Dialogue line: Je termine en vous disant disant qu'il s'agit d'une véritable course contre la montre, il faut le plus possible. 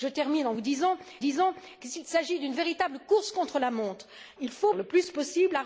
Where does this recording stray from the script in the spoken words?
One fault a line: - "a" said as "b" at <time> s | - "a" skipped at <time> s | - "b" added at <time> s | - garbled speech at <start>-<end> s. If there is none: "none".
none